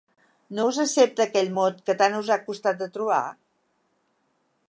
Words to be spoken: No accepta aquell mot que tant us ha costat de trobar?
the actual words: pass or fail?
fail